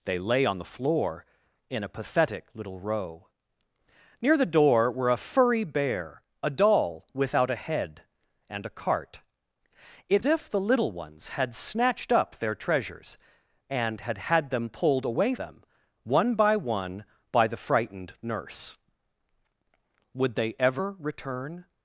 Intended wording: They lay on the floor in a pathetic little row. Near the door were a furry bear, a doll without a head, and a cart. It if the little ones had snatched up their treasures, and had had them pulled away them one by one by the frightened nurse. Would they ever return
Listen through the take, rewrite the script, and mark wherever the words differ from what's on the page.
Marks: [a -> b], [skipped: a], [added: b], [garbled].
They lay on the floor in a pathetic little row. Near the door were a furry bear, a doll without a head, and a cart. It if the little ones had snatched up their treasures, and had had them pulled away them one by one by the frightened nurse. Would they ever return